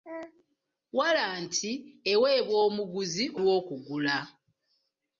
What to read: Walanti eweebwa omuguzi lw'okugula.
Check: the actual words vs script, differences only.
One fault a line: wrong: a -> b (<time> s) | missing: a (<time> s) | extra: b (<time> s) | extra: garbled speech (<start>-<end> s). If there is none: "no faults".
no faults